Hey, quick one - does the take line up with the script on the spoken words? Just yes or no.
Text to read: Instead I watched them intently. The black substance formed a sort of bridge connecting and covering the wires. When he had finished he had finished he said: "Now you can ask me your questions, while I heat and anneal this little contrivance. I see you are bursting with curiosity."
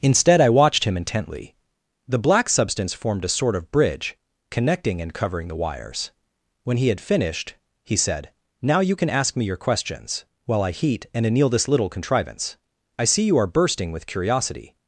no